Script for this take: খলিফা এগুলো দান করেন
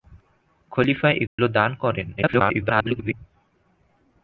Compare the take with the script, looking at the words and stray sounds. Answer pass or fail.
fail